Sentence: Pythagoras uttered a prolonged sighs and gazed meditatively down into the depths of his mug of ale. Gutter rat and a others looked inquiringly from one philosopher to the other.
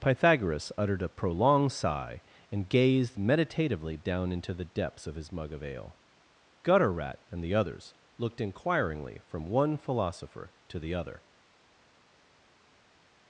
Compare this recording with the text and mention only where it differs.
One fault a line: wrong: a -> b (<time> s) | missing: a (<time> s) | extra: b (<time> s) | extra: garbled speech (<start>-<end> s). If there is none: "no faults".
wrong: sighs -> sigh (1.7 s)
wrong: a -> the (7.4 s)